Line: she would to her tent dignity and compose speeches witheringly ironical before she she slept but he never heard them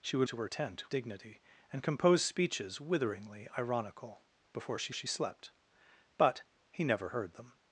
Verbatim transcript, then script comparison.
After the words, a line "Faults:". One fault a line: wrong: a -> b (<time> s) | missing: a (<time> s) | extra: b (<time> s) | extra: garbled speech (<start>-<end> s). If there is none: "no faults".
she would to her tent dignity and compose speeches witheringly ironical before she she slept but he never heard them
Faults:
no faults